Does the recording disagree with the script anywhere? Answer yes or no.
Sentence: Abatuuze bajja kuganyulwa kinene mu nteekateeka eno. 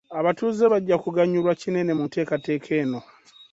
no